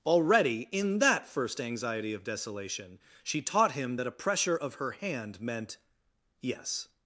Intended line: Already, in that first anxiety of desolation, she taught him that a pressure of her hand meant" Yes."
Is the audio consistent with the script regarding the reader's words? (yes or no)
yes